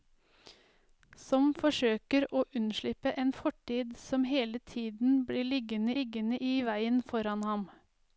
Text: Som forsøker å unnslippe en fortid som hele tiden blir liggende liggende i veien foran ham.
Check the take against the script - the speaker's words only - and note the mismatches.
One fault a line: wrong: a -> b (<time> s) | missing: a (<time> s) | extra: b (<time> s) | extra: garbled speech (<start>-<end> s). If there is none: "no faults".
no faults